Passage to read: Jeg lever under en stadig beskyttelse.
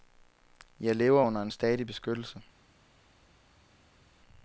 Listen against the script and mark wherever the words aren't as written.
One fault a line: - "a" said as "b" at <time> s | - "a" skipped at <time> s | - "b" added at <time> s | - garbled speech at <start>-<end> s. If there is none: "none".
none